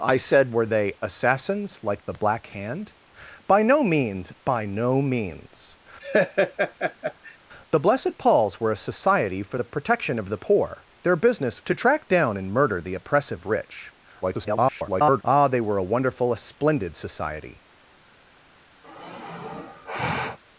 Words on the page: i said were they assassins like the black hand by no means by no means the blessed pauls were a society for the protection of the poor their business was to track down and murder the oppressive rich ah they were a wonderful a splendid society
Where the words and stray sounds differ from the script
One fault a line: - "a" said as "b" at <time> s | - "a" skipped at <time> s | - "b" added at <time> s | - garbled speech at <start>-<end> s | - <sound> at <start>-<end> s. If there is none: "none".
- laugh at 6.0-7.4 s
- "was" skipped at 11.6 s
- garbled speech at 14.2-15.2 s
- sigh at 18.8-20.4 s